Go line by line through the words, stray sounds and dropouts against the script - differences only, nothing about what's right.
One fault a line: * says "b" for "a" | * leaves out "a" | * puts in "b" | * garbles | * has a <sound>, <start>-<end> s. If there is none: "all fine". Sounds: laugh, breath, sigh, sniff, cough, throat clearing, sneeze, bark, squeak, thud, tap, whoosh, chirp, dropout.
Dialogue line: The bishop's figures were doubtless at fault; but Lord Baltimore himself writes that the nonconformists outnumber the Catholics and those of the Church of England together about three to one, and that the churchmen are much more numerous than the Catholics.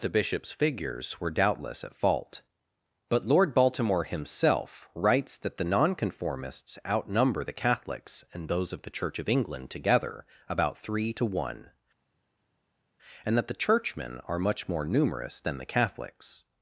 all fine